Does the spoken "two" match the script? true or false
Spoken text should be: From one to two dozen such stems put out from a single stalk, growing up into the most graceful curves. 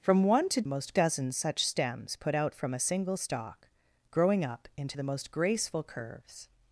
false